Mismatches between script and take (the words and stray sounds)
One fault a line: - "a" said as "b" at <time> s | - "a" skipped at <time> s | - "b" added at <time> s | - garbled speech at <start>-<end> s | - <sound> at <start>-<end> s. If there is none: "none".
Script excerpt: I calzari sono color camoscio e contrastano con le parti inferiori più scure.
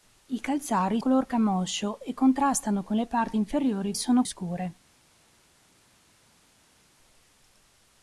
- "sono" skipped at 1.0 s
- "più" said as "sono" at 3.9 s